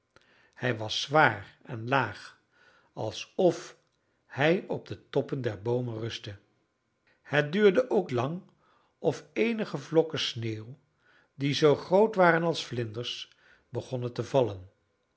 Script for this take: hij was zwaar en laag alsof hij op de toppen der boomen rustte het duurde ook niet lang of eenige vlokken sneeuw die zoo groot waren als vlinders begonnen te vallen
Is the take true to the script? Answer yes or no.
no